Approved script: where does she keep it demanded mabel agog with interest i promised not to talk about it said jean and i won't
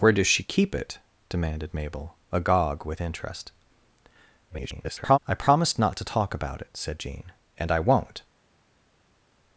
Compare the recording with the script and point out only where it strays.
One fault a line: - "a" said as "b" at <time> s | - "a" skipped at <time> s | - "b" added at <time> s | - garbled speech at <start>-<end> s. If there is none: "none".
- garbled speech at 4.5-5.2 s